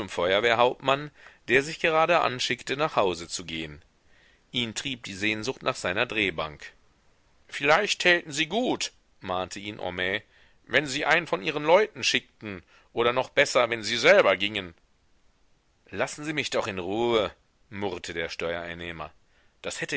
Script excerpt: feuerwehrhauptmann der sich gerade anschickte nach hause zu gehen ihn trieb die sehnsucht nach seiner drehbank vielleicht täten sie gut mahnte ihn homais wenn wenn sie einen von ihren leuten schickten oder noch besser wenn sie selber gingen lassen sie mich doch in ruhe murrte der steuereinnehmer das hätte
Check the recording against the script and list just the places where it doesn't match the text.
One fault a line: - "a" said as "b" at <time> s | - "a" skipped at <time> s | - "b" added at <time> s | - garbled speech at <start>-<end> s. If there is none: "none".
- "wenn" skipped at 10.9 s